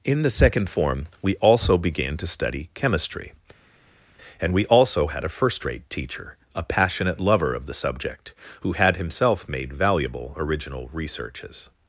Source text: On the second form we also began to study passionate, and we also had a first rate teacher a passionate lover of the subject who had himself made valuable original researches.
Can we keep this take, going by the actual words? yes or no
no